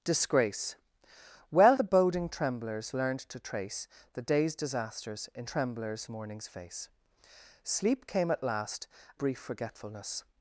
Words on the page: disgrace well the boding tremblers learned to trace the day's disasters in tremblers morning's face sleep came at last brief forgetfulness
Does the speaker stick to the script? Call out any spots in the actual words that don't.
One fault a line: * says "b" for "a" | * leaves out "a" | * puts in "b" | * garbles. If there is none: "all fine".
all fine